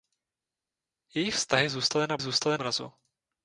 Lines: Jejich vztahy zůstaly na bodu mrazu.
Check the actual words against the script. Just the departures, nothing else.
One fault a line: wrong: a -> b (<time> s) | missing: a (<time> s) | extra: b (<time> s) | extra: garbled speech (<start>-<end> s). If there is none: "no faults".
wrong: bodu -> zůstaly (2.2 s)